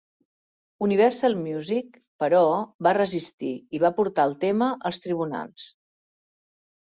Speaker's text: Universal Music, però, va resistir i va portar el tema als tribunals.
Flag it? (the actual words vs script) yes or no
no